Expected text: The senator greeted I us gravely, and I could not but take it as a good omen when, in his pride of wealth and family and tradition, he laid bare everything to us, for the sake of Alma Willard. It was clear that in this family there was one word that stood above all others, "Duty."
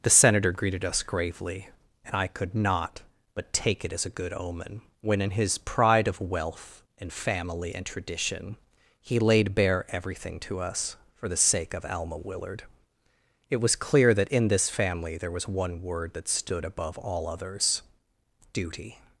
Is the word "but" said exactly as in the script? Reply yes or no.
yes